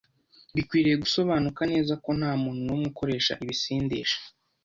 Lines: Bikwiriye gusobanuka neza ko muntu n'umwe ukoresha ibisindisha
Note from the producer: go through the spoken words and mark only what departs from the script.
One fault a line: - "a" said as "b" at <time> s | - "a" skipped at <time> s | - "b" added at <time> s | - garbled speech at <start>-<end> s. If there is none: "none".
- "nta" added at 2.2 s